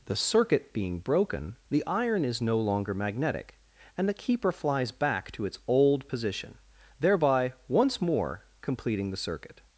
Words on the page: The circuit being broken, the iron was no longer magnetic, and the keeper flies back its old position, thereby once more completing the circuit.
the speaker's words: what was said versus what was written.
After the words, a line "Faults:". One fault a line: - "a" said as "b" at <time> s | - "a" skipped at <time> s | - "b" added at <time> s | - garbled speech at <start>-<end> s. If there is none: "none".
The circuit being broken, the iron is no longer magnetic, and the keeper flies back to its old position, thereby once more completing the circuit.
Faults:
- "was" said as "is" at 2.2 s
- "to" added at 5.3 s